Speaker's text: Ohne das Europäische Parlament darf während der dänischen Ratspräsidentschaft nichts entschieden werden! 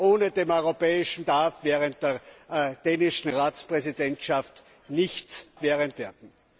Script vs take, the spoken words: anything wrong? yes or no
yes